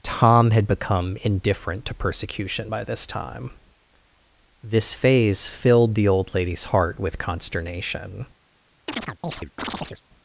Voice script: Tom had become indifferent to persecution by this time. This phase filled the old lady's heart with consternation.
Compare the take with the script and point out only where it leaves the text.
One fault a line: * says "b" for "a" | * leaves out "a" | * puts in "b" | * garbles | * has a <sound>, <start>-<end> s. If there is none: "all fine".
* has a chirp, 8.9-10.0 s